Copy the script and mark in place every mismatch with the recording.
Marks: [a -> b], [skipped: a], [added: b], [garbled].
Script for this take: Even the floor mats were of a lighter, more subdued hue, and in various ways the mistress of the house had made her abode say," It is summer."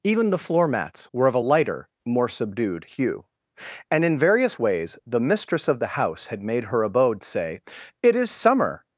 Even the floor mats were of a lighter, more subdued hue, and in various ways the mistress of the house had made her abode say," It is summer."